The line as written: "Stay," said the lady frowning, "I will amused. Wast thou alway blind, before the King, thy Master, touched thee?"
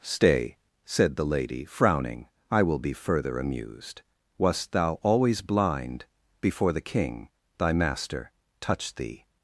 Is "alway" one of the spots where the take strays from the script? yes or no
yes